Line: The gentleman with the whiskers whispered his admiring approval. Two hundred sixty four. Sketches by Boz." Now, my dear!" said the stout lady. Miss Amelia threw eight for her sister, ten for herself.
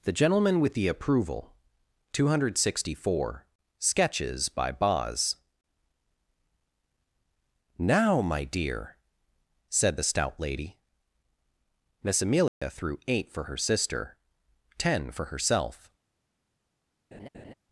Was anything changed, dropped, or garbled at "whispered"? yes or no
yes